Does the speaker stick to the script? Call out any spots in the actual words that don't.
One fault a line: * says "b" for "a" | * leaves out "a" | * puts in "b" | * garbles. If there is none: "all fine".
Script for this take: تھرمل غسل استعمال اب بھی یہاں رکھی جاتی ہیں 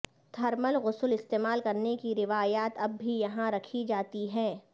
* puts in "کرنے کی روایات"